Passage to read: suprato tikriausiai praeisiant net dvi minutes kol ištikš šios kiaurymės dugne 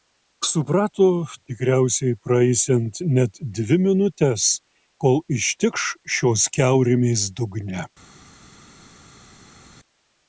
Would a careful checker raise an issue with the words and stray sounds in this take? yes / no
no